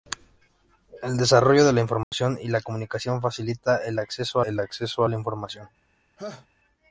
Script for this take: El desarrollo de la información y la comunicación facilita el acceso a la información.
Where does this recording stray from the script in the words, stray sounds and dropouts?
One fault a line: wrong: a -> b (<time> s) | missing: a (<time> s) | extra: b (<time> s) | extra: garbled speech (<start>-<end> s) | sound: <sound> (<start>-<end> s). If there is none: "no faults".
sound: dropout (2.0-2.1 s)
extra: el acceso (4.4 s)
sound: laugh (6.2-6.5 s)